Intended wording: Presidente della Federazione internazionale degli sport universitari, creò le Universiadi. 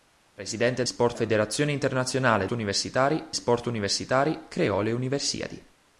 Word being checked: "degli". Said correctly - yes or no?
no